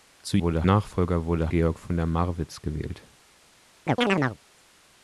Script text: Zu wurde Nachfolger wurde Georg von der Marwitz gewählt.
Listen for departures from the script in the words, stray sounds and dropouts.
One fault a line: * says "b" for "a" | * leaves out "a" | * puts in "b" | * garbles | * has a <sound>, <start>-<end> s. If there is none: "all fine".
* has a chirp, 3.9-4.4 s